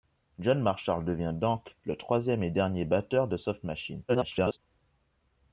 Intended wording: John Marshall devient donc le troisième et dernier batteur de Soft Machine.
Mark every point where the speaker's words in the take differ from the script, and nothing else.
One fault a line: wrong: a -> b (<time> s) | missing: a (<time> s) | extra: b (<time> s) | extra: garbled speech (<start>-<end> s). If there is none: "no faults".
extra: garbled speech (4.1-4.6 s)